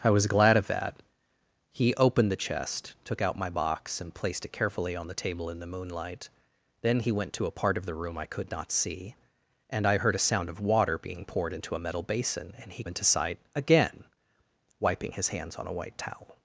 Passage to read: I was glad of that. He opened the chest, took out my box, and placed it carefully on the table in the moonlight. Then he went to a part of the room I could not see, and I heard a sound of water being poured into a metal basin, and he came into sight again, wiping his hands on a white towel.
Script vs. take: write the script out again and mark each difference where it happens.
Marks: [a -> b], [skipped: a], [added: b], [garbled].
I was glad of that. He opened the chest, took out my box, and placed it carefully on the table in the moonlight. Then he went to a part of the room I could not see, and I heard a sound of water being poured into a metal basin, and he [skipped: came] into sight again, wiping his hands on a white towel.